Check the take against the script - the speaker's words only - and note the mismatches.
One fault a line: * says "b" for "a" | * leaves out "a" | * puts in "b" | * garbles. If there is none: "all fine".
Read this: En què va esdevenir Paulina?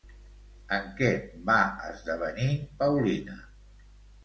all fine